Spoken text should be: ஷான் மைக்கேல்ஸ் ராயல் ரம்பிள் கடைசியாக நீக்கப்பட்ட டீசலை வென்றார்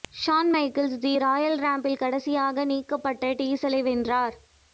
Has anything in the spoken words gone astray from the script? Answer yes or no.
yes